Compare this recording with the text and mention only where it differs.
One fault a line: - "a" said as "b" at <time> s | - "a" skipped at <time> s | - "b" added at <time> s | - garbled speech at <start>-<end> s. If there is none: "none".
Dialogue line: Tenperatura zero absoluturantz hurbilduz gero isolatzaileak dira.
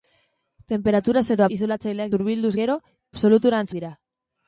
- "absoluturantz" said as "isolatzaileak" at 1.6 s
- "isolatzaileak" said as "absoluturantz" at 3.1 s